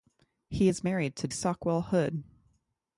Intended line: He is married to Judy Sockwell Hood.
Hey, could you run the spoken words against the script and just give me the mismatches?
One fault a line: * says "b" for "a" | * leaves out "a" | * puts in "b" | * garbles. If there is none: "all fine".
* leaves out "Judy"